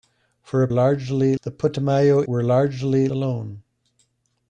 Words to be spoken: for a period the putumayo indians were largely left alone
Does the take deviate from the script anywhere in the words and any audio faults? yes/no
yes